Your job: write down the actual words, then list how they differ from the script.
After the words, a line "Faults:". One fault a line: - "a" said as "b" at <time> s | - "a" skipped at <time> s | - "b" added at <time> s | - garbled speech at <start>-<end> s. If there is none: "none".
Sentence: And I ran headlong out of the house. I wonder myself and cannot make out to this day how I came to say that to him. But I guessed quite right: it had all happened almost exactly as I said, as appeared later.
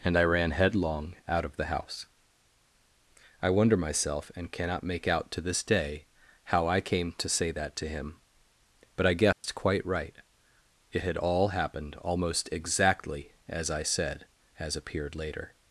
And I ran headlong out of the house. I wonder myself and cannot make out to this day how I came to say that to him. But I guessed quite right: it had all happened almost exactly as I said, as appeared later.
Faults:
none